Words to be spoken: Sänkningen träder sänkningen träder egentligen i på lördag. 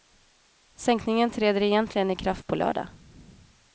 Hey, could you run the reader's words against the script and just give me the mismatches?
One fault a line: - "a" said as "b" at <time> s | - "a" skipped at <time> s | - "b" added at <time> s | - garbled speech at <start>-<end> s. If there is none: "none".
- "sänkningen träder" skipped at 1.6 s
- "kraft" added at 2.1 s